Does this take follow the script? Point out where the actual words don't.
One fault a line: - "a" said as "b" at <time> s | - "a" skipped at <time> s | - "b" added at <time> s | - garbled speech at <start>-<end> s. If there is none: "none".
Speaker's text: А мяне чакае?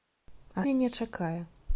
none